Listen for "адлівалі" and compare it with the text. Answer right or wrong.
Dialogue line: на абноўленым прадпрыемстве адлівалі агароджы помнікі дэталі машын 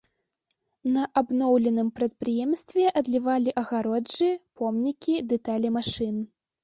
right